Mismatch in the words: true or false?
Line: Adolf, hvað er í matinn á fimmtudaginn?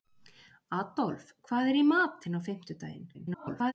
true